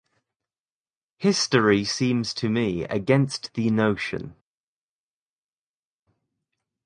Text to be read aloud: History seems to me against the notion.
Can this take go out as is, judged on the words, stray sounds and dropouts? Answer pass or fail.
pass